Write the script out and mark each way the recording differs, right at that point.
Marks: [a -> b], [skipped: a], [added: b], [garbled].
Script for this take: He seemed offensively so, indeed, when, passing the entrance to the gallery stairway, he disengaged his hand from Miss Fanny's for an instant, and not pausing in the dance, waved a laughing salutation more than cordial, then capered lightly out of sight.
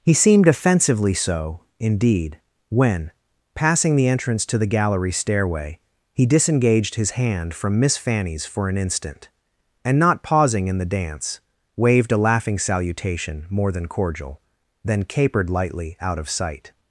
He seemed offensively so, indeed, when, passing the entrance to the gallery stairway, he disengaged his hand from Miss Fanny's for an instant, and not pausing in the dance, waved a laughing salutation more than cordial, then capered lightly out of sight.